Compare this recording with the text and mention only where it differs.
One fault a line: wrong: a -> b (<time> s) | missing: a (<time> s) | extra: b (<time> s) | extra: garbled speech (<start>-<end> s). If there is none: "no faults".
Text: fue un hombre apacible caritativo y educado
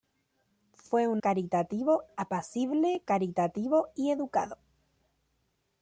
wrong: hombre -> caritativo (1.2 s)